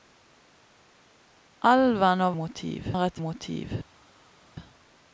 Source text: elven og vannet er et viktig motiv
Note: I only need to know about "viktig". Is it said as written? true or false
false